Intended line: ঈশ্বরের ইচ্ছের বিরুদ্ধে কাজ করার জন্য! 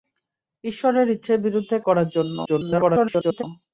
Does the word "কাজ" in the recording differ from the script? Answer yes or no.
yes